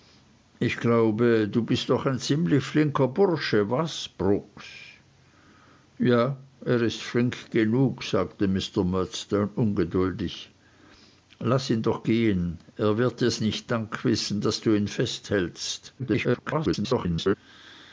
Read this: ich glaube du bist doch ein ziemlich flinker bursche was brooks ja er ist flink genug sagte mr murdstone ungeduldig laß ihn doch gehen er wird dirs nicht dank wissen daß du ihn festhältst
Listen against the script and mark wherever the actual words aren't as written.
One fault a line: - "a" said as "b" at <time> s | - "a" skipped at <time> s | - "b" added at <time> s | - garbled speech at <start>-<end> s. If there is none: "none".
- garbled speech at 16.0-17.3 s